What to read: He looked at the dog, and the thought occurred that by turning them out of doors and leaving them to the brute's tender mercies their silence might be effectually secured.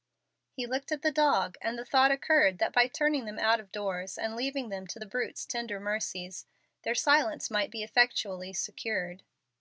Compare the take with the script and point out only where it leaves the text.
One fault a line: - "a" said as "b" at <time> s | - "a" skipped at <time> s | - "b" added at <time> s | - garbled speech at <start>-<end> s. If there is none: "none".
none